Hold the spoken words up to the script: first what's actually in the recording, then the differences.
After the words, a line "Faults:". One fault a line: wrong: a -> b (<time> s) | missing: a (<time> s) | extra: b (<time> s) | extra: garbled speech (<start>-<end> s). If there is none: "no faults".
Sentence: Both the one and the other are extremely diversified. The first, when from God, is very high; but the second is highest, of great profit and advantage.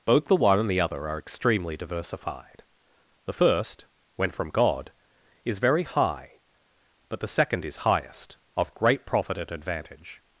Both the one and the other are extremely diversified. The first, when from God, is very high; but the second is highest, of great profit and advantage.
Faults:
no faults